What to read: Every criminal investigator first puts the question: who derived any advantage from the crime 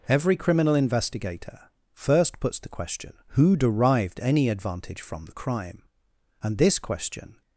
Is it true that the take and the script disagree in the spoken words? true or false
true